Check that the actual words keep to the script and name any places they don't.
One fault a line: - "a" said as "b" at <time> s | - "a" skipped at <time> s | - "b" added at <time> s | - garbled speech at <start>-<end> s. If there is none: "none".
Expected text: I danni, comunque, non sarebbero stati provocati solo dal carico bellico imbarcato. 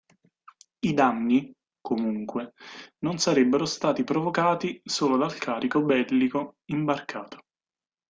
none